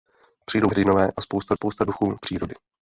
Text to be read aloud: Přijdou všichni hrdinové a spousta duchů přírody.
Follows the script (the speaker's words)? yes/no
no